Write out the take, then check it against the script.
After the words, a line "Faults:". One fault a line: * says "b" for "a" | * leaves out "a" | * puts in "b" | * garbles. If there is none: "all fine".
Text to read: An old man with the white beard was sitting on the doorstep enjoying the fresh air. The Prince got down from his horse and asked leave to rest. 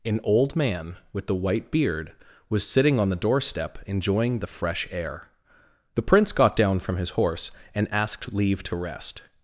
An old man with the white beard was sitting on the doorstep enjoying the fresh air. The Prince got down from his horse and asked leave to rest.
Faults:
all fine